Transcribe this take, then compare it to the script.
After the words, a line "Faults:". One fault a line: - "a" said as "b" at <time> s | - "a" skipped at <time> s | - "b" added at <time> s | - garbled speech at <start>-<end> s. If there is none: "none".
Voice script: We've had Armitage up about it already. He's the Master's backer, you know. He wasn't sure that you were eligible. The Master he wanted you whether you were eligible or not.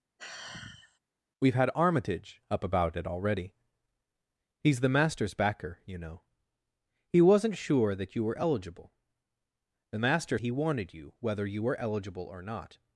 We've had Armitage up about it already. He's the Master's backer, you know. He wasn't sure that you were eligible. The Master he wanted you whether you were eligible or not.
Faults:
none